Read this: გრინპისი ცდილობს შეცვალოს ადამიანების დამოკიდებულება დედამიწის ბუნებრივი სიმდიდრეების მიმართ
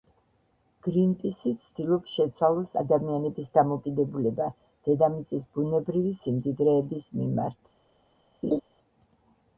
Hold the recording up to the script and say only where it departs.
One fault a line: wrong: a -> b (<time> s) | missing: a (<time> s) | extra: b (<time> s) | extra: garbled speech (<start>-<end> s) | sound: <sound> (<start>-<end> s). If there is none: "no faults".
sound: laugh (8.4-8.6 s)